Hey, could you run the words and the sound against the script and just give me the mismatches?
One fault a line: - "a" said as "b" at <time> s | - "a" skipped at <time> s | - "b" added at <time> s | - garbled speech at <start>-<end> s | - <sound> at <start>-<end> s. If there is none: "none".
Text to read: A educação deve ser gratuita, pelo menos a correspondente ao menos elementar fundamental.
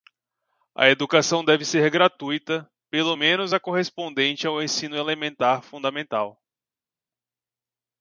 - "menos" said as "ensino" at 4.6 s